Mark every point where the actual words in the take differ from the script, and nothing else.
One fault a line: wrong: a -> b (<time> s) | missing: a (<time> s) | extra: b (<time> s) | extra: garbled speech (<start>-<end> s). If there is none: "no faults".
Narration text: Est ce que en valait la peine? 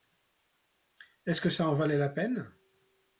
extra: ça (1.5 s)